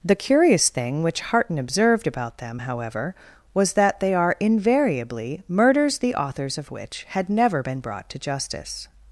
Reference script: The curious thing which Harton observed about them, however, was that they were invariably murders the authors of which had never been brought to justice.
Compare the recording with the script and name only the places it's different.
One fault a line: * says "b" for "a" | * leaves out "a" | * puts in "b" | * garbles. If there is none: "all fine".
* says "are" for "were"